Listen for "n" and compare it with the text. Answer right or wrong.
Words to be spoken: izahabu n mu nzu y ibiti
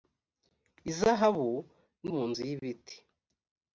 right